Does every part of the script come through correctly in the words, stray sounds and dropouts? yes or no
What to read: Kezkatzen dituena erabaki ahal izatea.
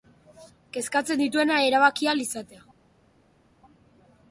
yes